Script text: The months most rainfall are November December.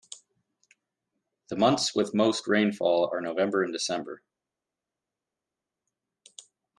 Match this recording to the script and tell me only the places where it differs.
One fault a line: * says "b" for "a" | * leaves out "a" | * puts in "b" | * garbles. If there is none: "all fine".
* puts in "with"
* puts in "and"